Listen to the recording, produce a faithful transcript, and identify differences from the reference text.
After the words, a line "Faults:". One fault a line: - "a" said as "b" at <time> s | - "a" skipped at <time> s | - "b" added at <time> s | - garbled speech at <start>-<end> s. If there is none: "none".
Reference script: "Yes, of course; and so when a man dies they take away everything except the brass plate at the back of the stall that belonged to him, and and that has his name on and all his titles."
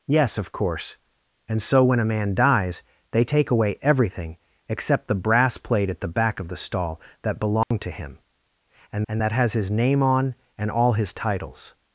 "Yes, of course; and so when a man dies they take away everything except the brass plate at the back of the stall that belonged to him, and and that has his name on and all his titles."
Faults:
none